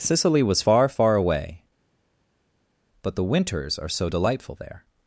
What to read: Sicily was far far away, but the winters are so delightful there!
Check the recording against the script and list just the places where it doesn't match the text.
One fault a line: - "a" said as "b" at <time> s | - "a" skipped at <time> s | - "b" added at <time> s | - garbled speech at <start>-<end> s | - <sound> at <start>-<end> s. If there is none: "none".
none